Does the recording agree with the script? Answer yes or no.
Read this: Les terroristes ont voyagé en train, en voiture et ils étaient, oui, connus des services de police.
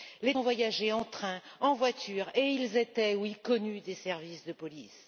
no